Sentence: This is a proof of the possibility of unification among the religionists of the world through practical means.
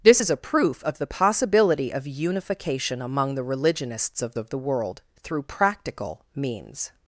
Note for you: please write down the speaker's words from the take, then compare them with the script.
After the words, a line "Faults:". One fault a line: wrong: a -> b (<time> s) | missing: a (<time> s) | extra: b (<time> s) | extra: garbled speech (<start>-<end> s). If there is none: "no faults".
This is a proof of the possibility of unification among the religionists of of the world through practical means.
Faults:
extra: of (4.4 s)